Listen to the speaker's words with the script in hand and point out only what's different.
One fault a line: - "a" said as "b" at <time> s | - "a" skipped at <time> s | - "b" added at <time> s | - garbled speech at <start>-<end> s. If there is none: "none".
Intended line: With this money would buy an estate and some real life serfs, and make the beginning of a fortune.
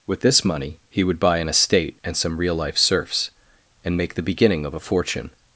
- "he" added at 0.9 s